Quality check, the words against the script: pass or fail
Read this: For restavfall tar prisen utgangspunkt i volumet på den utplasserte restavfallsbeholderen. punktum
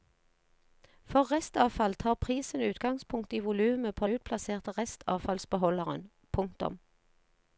fail